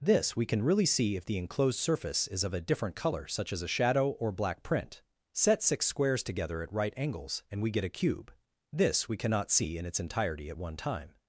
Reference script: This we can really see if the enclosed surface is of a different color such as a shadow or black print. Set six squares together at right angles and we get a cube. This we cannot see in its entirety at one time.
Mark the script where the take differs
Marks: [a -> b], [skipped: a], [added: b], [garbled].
This we can really see if the enclosed surface is of a different color such as a shadow or black print. Set six squares together at right angles and we get a cube. This we cannot see in its entirety at one time.